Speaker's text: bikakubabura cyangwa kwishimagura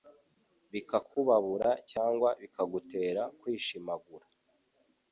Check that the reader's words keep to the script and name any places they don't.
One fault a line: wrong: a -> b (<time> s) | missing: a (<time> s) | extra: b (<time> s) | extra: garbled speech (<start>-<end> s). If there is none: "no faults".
extra: bikagutera (2.4 s)